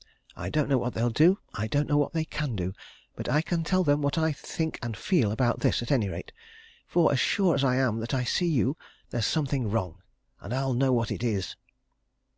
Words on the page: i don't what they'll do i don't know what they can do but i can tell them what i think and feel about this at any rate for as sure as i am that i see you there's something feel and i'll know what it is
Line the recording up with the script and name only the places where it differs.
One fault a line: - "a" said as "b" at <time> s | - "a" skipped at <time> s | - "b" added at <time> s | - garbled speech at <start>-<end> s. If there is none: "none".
- "know" added at 0.7 s
- "feel" said as "wrong" at 9.7 s